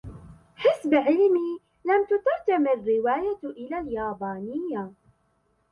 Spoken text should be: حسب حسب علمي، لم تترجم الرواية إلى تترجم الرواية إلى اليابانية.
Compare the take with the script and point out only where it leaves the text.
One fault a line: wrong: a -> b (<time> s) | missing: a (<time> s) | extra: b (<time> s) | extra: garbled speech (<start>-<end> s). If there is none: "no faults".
missing: حسب (0.9 s)
missing: تترجم الرواية إلى (3.8 s)